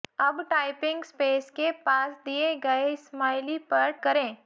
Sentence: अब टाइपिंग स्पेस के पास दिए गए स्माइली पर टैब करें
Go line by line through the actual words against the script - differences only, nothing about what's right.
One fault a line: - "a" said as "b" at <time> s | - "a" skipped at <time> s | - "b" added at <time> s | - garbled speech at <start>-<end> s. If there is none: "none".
- "टैब" skipped at 3.9 s